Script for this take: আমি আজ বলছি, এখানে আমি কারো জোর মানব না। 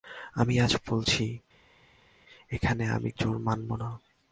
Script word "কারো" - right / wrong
wrong